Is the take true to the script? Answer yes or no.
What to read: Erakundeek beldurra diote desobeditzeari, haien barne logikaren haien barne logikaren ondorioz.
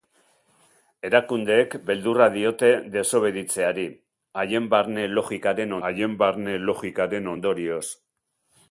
yes